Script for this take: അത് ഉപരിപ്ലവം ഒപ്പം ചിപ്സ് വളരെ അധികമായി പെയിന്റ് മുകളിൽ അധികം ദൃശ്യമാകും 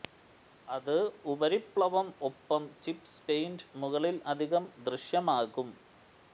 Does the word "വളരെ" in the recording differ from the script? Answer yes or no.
yes